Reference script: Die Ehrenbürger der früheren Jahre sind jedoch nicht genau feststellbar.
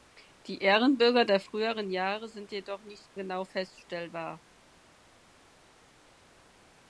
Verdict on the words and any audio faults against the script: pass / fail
pass